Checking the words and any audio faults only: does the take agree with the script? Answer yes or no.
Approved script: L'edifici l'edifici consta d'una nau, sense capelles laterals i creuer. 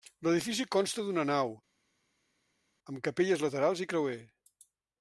no